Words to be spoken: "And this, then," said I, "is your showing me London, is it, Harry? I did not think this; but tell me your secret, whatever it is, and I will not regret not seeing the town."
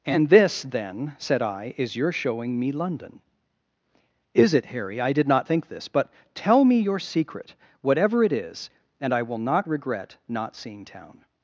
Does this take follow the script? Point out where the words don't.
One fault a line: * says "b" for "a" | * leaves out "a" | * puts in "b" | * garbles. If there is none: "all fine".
* leaves out "the"